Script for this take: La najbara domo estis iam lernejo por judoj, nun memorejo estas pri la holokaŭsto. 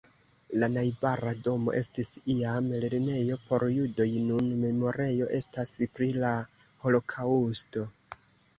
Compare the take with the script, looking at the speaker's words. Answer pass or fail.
pass